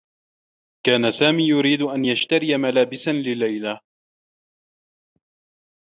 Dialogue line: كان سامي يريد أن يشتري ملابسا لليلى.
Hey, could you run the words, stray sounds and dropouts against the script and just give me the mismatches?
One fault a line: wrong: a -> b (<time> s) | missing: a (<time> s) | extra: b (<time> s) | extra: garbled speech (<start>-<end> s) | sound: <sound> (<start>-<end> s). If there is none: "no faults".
no faults